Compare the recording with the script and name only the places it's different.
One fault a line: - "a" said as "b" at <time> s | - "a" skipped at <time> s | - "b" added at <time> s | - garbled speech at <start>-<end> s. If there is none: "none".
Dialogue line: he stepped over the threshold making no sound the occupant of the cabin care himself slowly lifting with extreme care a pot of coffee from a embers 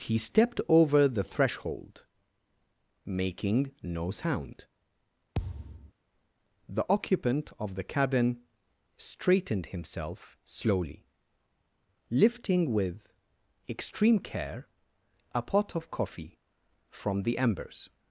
- "care" said as "straightened" at 9.0 s
- "a" said as "the" at 17.2 s